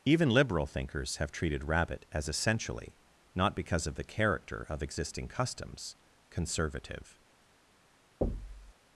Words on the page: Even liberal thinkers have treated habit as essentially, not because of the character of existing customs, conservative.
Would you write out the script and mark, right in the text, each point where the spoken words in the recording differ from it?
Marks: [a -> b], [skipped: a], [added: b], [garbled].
Even liberal thinkers have treated [habit -> rabbit] as essentially, not because of the character of existing customs, conservative.